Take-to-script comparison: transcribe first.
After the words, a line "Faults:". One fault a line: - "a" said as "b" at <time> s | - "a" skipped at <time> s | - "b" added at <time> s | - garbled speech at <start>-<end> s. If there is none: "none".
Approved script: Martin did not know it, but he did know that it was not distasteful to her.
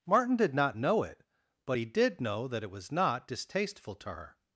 Martin did not know it, but he did know that it was not distasteful to her.
Faults:
none